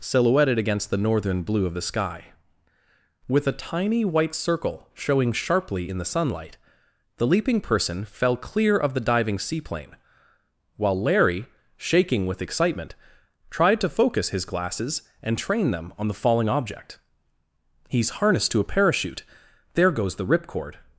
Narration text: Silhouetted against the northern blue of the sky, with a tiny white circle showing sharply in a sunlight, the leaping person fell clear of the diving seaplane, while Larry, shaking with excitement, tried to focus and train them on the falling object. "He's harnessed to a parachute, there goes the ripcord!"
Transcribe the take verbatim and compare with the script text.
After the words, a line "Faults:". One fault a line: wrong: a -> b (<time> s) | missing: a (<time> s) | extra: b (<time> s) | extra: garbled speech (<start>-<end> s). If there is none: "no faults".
Silhouetted against the northern blue of the sky, with a tiny white circle showing sharply in the sunlight, the leaping person fell clear of the diving seaplane, while Larry, shaking with excitement, tried to focus his glasses and train them on the falling object. "He's harnessed to a parachute, there goes the ripcord!"
Faults:
wrong: a -> the (6.0 s)
extra: his glasses (14.3 s)